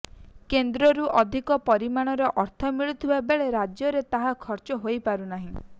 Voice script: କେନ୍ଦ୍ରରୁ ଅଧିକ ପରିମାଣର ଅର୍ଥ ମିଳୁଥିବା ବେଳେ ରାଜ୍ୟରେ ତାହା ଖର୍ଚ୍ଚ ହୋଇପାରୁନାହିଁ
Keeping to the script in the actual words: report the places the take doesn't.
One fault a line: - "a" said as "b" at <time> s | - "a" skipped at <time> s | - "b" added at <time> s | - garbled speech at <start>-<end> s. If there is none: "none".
none